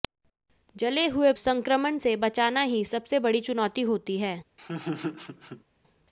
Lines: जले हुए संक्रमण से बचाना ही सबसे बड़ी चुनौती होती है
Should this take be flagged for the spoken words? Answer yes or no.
no